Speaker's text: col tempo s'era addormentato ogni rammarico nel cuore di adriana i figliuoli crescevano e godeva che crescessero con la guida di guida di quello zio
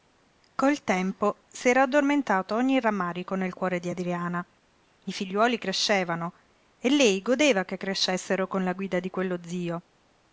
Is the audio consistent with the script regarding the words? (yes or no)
no